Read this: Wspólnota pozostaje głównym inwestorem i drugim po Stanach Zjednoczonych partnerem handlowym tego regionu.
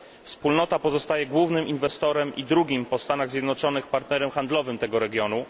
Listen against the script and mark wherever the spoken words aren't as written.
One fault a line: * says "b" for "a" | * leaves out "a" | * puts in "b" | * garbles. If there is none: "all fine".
all fine